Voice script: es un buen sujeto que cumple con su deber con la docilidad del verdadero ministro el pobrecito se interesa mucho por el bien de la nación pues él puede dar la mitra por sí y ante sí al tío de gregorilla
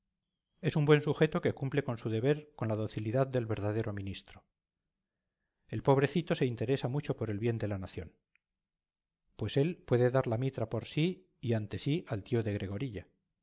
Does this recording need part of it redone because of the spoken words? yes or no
no